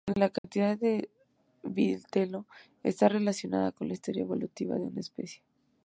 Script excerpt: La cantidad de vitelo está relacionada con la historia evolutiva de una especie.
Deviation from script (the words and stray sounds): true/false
true